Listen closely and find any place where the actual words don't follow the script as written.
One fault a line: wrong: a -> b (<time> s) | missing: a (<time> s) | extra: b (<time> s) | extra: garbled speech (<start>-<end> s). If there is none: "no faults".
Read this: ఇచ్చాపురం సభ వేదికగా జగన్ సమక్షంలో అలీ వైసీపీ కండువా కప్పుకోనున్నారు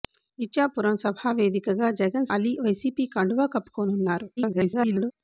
missing: సమక్షంలో (2.3 s)
extra: garbled speech (4.4-5.1 s)